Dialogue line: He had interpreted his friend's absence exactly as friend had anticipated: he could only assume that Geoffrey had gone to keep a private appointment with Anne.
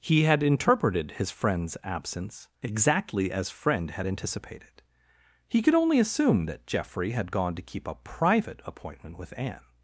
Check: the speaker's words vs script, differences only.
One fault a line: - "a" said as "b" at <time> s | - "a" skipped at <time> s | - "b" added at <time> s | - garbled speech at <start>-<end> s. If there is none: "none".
none